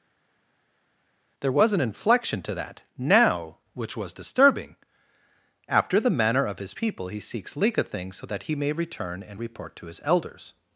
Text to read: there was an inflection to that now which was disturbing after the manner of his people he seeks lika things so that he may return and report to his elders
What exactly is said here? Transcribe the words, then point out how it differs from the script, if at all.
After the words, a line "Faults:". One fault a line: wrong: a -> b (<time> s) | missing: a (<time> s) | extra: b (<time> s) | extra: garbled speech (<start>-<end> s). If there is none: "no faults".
there was an inflection to that now which was disturbing after the manner of his people he seeks lika things so that he may return and report to his elders
Faults:
no faults